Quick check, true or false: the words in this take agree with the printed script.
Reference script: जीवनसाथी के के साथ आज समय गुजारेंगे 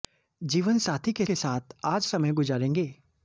true